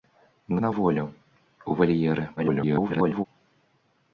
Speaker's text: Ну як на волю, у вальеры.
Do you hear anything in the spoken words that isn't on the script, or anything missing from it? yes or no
yes